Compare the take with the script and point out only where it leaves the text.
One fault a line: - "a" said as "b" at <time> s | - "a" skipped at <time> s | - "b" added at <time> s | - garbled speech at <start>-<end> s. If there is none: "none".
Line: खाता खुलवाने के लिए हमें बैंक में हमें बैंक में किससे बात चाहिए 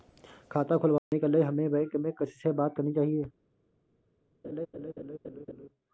- "हमें बैंक में" skipped at 2.1 s
- "करनी" added at 2.8 s